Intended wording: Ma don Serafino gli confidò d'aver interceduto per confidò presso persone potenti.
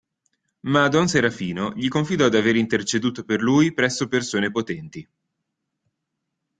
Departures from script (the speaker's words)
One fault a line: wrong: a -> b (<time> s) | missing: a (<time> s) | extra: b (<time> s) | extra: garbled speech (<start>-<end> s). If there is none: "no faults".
wrong: confidò -> lui (3.4 s)